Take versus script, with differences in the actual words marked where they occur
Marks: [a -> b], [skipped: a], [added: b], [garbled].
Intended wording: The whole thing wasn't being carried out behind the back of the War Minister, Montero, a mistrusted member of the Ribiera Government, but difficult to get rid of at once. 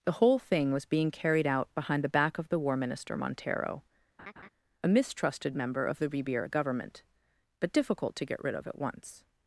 The whole thing [wasn't -> was] being carried out behind the back of the War Minister, Montero, a mistrusted member of the Ribiera Government, but difficult to get rid of at once.